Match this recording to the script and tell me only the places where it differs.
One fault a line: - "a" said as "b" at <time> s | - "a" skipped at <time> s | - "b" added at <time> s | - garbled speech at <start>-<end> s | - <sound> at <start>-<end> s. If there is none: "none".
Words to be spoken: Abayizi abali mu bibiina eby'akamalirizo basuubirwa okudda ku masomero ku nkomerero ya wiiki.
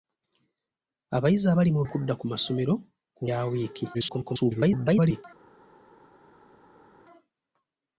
- "bibiina eby'akamalirizo basuubirwa" skipped at 1.8 s
- "nkomerero" skipped at 3.2 s
- garbled speech at 3.9-5.2 s